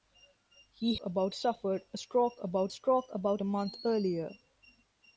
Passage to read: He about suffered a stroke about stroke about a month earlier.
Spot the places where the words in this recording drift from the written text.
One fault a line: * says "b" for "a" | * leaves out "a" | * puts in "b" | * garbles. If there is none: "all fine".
all fine